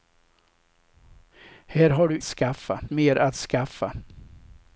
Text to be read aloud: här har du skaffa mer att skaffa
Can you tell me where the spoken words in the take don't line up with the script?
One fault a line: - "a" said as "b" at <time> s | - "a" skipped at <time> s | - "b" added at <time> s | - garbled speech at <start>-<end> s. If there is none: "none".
none